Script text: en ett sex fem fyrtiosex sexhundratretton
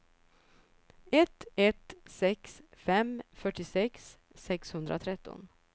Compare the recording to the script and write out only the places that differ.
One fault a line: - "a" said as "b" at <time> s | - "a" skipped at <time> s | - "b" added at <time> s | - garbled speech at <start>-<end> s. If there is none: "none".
- "en" said as "ett" at 1.1 s